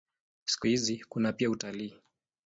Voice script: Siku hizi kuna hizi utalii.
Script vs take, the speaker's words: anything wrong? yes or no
yes